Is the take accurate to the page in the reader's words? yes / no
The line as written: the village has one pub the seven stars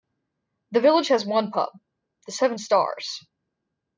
yes